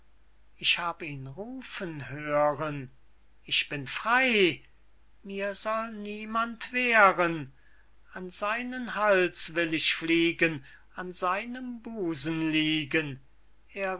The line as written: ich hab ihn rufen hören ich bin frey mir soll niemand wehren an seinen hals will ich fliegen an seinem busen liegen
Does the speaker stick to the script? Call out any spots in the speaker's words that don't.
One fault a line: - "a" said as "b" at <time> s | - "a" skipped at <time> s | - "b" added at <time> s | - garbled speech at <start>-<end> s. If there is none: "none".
none